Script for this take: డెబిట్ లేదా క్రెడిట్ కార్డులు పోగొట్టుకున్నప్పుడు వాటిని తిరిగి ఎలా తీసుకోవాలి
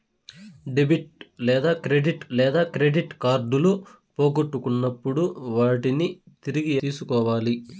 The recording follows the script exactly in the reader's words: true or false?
false